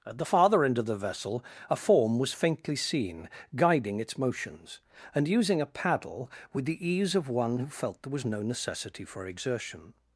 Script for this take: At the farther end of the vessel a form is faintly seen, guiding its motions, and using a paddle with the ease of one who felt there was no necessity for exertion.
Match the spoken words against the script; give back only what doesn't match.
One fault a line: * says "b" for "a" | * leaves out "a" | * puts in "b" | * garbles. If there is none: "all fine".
* says "was" for "is"